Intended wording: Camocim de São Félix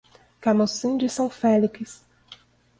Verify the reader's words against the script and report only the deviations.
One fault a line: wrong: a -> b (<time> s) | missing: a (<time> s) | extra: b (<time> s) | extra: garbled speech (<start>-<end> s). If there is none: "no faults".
no faults